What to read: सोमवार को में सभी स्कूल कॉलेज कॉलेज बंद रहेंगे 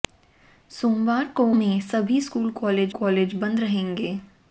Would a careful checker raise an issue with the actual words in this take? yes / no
no